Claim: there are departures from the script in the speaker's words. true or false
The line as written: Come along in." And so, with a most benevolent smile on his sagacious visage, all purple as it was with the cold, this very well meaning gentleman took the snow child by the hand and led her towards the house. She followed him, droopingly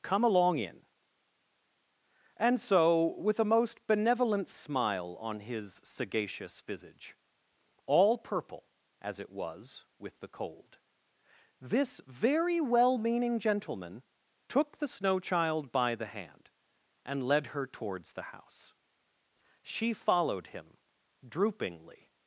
false